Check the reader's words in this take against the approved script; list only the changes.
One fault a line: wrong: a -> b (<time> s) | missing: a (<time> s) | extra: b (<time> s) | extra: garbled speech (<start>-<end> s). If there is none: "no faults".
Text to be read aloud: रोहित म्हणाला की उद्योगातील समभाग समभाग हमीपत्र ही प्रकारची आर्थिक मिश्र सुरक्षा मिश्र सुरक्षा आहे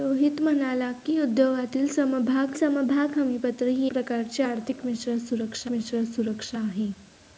no faults